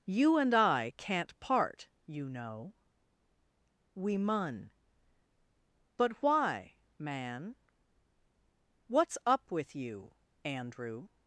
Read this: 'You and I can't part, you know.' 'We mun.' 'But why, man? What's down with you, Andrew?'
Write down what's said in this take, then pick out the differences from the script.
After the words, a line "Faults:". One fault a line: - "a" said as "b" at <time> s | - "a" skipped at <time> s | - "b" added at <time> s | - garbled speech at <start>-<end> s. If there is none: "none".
'You and I can't part, you know.' 'We mun.' 'But why, man? What's up with you, Andrew?'
Faults:
- "down" said as "up" at 9.3 s